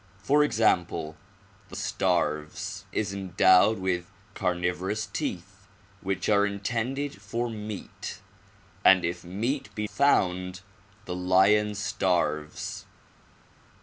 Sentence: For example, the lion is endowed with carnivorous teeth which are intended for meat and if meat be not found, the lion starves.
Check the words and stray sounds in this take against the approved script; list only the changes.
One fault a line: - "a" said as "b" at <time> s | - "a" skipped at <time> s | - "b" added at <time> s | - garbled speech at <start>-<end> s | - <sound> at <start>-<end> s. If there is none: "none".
- "lion" said as "starves" at 1.7 s
- "not" skipped at 9.9 s